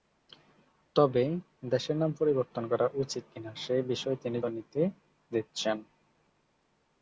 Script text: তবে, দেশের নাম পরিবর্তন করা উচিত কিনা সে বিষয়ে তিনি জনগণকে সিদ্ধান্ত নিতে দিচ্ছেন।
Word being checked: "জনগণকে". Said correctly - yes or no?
no